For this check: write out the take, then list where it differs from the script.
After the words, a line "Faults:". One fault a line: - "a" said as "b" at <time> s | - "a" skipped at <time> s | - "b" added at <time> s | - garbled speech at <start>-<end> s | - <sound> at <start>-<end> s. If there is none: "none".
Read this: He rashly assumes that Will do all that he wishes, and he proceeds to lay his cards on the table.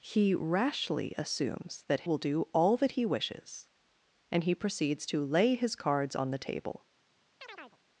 He rashly assumes that Will do all that he wishes, and he proceeds to lay his cards on the table.
Faults:
- chirp at 7.4-7.8 s